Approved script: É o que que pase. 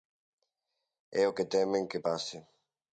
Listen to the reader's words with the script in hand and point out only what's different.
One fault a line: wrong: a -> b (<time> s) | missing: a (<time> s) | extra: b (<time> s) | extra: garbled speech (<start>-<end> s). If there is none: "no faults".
extra: temen (1.5 s)